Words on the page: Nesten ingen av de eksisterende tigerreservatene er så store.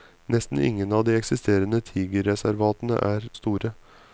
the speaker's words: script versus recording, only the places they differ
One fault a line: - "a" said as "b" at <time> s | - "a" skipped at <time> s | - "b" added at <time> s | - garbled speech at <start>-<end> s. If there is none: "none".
- "så" skipped at 3.3 s